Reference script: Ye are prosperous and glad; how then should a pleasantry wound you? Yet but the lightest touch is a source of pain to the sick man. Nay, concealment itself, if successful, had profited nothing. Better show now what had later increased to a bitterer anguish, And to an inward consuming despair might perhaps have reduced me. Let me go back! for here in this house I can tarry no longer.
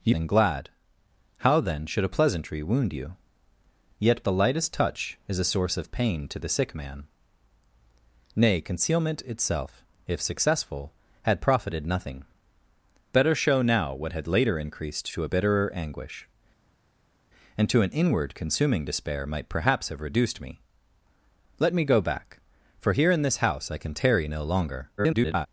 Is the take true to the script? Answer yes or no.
no